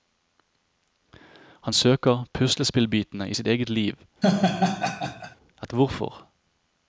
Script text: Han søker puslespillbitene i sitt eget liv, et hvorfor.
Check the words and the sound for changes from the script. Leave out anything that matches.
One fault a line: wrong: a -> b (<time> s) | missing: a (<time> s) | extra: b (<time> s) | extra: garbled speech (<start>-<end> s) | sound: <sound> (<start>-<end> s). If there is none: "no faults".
sound: laugh (4.2-5.4 s)